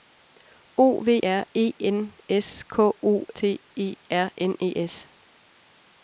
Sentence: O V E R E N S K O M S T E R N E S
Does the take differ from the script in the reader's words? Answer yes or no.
yes